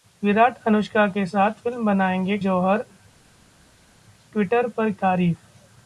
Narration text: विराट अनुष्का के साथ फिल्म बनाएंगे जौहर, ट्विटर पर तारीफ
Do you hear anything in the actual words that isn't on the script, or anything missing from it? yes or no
no